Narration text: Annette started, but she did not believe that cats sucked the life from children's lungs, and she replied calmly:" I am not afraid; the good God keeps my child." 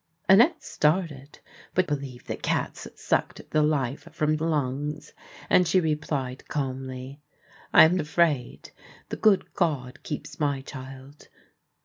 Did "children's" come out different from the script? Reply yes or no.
yes